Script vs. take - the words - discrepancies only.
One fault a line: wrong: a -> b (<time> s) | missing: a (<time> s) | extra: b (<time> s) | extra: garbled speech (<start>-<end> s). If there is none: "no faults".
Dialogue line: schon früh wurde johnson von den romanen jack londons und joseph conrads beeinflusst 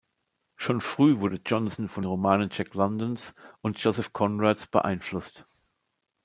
missing: den (2.1 s)